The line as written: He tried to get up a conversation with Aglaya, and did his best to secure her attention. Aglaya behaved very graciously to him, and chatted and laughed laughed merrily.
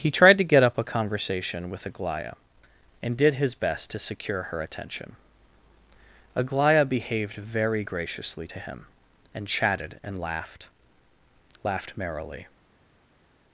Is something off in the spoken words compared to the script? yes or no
no